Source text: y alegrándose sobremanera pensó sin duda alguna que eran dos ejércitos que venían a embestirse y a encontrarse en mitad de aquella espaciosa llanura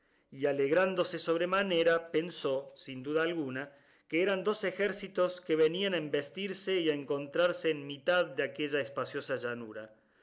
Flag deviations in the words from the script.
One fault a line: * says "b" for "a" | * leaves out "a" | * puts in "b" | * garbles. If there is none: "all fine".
all fine